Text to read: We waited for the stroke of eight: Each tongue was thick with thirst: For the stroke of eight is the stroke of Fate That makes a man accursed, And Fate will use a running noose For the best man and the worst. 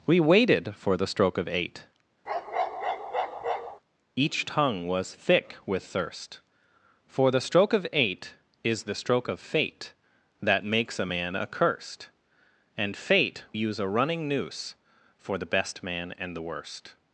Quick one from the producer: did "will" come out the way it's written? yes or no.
no